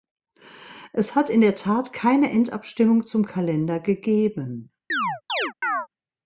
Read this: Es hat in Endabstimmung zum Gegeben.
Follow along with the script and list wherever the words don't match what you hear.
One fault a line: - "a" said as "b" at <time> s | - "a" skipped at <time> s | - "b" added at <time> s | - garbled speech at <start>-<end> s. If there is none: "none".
- "der Tat keine" added at 1.4 s
- "Kalender" added at 3.3 s